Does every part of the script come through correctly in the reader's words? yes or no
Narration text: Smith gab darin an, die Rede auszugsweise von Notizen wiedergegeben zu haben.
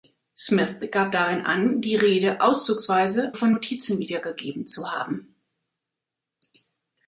yes